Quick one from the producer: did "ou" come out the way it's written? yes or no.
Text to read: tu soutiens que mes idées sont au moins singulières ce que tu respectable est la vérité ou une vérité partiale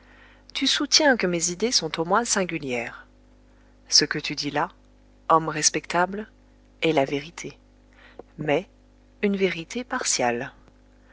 no